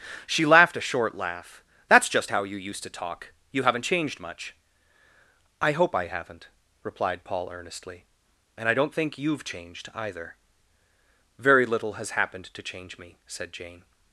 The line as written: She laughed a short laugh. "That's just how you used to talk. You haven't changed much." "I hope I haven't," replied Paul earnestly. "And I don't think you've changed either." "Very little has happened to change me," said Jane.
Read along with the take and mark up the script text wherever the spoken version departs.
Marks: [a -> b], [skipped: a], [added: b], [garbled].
She laughed a short laugh. "That's just how you used to talk. You haven't changed much." "I hope I haven't," replied Paul earnestly. "And I don't think you've changed either." "Very little has happened to change me," said Jane.